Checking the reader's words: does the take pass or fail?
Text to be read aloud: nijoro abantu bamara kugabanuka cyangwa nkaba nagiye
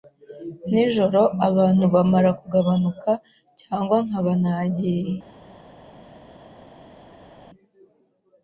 pass